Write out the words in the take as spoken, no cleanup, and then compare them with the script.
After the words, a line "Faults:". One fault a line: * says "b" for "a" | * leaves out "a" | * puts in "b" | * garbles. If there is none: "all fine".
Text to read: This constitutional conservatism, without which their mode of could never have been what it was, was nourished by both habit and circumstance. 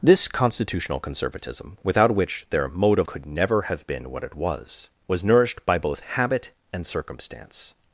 This constitutional conservatism, without which their mode of could never have been what it was, was nourished by both habit and circumstance.
Faults:
all fine